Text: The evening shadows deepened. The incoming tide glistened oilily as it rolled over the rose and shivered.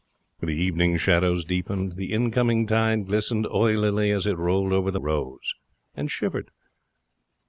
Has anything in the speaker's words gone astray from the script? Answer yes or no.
no